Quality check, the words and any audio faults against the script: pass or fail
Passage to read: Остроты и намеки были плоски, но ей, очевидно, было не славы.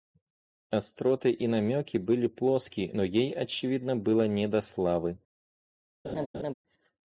fail